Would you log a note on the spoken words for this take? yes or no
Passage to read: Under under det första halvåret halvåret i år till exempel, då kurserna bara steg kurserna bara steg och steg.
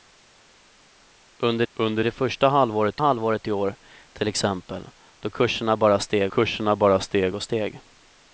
no